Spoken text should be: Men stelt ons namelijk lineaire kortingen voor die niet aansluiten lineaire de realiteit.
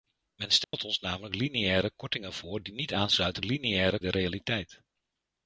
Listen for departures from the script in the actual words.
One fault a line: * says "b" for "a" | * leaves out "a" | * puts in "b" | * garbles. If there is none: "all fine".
all fine